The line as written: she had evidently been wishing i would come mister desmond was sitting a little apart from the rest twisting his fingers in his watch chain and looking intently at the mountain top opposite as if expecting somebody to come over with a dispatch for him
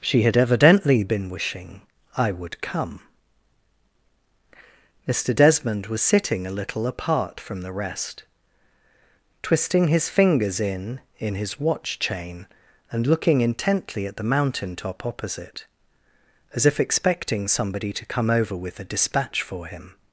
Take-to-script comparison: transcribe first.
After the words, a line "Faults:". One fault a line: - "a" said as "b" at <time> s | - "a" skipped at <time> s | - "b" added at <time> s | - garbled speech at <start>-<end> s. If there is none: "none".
she had evidently been wishing i would come mister desmond was sitting a little apart from the rest twisting his fingers in in his watch chain and looking intently at the mountain top opposite as if expecting somebody to come over with a dispatch for him
Faults:
- "in" added at 11.2 s